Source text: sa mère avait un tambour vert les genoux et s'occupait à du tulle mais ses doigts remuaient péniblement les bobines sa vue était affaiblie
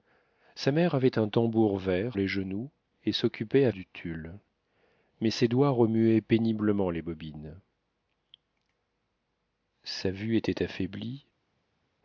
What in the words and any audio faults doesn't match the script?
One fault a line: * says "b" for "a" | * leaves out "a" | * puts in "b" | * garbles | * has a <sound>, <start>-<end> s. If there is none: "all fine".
all fine